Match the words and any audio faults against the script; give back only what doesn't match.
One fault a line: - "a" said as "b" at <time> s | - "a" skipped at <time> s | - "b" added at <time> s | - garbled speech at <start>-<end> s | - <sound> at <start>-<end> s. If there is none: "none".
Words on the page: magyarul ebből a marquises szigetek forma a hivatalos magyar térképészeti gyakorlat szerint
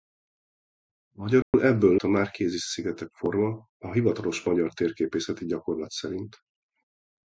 - dropout at 1.4-1.5 s